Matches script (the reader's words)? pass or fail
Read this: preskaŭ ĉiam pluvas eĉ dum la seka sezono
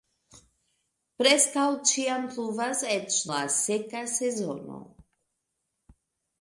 fail